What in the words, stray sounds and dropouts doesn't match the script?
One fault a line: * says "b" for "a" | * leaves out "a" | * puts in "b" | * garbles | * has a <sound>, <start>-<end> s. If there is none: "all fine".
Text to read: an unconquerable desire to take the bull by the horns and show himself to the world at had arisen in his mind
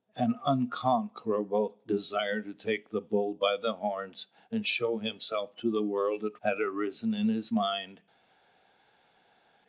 all fine